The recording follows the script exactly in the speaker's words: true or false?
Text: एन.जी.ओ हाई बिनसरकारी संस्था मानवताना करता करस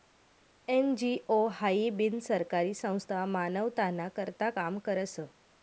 false